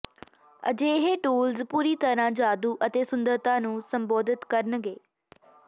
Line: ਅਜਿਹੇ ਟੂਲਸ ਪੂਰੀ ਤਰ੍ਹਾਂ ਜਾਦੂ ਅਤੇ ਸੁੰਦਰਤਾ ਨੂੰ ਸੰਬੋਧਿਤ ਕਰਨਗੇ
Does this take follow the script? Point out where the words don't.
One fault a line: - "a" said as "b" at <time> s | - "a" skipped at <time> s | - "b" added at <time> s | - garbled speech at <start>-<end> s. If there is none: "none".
none